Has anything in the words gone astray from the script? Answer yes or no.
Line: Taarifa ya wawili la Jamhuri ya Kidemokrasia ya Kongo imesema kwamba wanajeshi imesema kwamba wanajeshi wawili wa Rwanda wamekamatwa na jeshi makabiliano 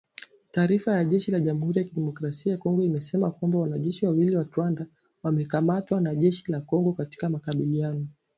yes